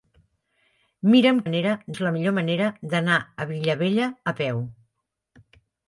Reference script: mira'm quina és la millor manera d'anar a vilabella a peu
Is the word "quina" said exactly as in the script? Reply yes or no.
no